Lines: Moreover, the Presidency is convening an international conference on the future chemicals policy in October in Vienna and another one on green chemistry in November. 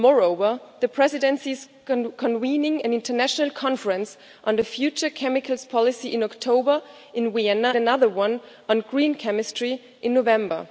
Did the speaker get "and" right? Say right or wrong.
wrong